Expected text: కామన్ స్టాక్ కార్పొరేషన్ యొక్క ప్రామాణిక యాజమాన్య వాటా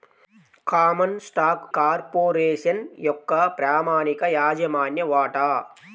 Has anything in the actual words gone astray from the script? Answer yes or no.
no